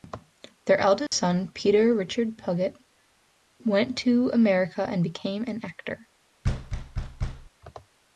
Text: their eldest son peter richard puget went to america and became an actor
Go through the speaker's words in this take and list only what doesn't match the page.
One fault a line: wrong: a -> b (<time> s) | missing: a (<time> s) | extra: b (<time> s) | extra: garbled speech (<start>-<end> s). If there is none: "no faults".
no faults